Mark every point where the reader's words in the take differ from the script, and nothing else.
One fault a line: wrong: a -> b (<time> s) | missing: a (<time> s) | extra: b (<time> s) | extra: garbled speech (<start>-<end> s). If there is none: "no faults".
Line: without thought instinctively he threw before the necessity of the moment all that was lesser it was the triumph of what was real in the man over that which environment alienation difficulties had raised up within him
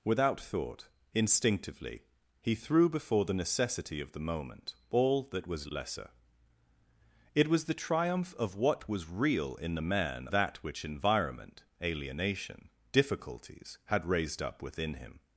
missing: over (10.3 s)